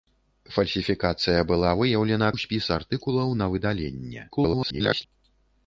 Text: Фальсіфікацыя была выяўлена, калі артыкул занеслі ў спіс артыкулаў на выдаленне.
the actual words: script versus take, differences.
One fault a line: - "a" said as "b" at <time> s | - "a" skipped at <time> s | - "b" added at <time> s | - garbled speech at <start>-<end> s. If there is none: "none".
- "калі артыкул занеслі" skipped at 2.3 s
- garbled speech at 4.3-5.1 s